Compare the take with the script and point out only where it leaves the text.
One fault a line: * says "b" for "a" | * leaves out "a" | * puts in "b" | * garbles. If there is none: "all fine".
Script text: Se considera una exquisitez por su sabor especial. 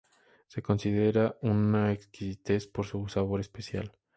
all fine